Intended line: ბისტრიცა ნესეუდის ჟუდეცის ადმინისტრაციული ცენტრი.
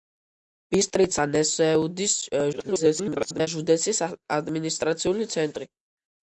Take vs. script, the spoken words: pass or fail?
fail